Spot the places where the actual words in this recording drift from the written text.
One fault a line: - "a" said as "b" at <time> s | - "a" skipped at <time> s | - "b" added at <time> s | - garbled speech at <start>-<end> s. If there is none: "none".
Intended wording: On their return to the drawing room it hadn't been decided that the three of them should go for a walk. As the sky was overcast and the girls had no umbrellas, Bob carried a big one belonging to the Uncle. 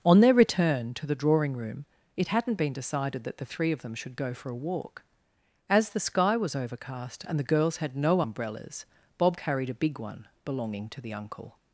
none